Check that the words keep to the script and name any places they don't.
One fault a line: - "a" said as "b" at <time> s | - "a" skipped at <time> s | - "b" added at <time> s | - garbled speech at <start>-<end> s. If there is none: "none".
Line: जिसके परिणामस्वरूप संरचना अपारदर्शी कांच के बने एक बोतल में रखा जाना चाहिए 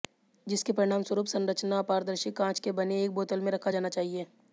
none